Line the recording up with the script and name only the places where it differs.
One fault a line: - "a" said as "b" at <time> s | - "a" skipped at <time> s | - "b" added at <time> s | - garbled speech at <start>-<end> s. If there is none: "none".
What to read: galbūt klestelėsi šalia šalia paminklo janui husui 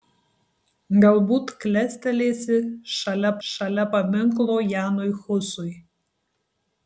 none